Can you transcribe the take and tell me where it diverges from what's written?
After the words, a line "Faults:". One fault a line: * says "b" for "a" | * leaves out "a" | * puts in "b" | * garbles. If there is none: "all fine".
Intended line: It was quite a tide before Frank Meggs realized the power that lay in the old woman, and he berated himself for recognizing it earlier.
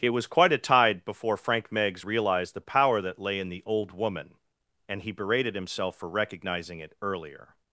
It was quite a tide before Frank Meggs realized the power that lay in the old woman, and he berated himself for recognizing it earlier.
Faults:
all fine